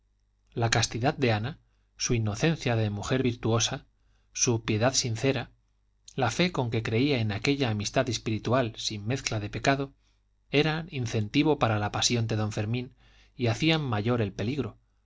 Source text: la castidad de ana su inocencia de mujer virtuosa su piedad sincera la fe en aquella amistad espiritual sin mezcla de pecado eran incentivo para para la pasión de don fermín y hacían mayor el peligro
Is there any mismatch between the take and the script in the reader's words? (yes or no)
yes